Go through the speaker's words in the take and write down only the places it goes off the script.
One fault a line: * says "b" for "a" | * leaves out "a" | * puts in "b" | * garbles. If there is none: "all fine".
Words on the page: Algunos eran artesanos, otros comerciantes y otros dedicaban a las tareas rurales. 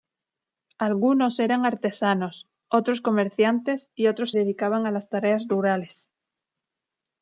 all fine